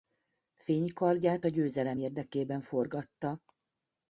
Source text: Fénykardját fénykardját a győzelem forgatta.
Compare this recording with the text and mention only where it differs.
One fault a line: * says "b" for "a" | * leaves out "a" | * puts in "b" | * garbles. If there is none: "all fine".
* leaves out "fénykardját"
* puts in "érdekében"